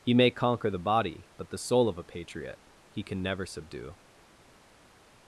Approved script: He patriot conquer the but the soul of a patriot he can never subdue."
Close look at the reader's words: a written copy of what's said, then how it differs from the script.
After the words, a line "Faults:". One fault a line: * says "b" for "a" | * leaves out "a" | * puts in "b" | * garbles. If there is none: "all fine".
He may conquer the body, but the soul of a patriot he can never subdue."
Faults:
* says "may" for "patriot"
* puts in "body"